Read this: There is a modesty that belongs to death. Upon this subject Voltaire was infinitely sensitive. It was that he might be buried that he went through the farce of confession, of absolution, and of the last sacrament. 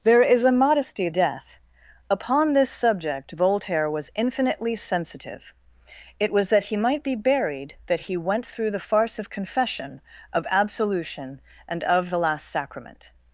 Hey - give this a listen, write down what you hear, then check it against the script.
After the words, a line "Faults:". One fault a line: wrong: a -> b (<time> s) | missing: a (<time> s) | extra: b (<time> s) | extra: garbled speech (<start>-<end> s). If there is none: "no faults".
There is a modesty death. Upon this subject Voltaire was infinitely sensitive. It was that he might be buried that he went through the farce of confession, of absolution, and of the last sacrament.
Faults:
missing: that belongs to (1.1 s)